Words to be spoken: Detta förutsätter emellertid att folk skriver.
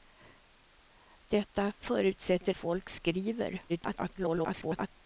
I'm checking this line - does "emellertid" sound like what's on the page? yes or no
no